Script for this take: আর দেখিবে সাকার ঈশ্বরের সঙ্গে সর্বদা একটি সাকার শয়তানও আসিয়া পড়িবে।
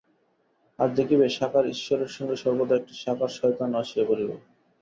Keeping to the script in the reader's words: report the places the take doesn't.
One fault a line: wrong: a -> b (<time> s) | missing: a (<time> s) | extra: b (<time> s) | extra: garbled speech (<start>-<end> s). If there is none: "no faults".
no faults